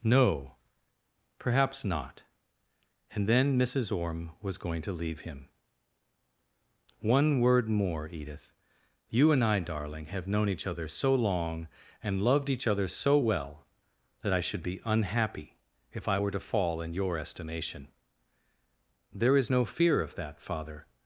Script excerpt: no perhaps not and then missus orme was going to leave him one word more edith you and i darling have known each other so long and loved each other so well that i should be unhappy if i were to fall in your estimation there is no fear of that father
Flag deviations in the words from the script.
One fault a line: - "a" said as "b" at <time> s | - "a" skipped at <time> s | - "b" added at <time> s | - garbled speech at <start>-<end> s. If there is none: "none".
none